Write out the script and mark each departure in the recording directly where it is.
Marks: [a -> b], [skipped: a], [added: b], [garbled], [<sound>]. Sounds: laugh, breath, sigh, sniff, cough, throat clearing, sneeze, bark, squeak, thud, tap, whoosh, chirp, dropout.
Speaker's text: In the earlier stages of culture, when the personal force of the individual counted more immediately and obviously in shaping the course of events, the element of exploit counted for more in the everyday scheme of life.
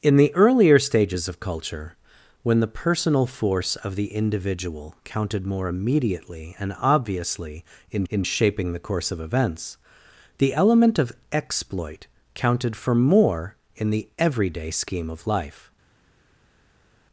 In the earlier stages of culture, when the personal force of the individual counted more immediately and obviously in [added: in] shaping the course of events, the element of exploit counted for more in the everyday scheme of life.